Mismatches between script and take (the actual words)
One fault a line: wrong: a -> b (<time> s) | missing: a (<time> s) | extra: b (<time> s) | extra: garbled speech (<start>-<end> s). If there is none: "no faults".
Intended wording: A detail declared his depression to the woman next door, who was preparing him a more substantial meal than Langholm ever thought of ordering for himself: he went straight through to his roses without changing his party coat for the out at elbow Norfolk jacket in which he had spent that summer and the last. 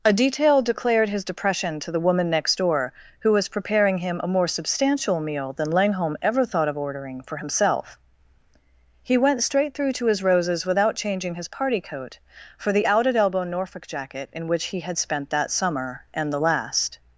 no faults